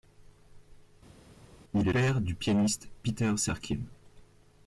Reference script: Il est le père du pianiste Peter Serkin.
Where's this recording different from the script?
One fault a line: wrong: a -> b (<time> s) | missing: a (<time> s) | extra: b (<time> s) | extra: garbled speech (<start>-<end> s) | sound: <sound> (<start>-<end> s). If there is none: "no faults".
missing: le (1.9 s)